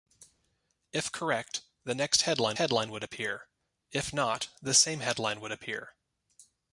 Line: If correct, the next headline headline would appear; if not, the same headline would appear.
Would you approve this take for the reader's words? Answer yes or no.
yes